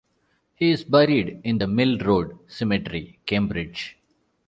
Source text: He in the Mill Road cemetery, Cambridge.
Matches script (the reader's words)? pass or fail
fail